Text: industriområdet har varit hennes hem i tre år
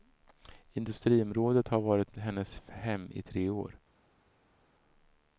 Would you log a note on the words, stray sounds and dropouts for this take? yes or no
no